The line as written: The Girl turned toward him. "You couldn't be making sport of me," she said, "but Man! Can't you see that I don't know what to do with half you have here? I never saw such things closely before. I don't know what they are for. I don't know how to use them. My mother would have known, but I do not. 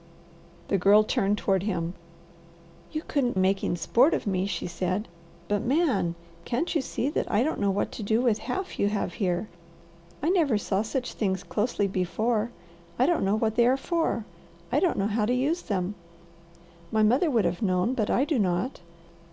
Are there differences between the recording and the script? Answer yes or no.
yes